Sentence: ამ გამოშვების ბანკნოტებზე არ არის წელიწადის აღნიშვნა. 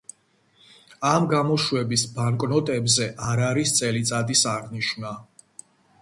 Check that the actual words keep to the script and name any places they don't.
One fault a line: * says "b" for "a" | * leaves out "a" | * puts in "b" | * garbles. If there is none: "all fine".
all fine